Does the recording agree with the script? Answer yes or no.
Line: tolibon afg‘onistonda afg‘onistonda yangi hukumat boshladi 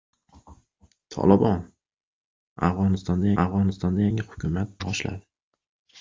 yes